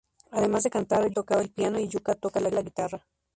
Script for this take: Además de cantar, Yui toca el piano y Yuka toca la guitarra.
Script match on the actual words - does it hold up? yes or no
no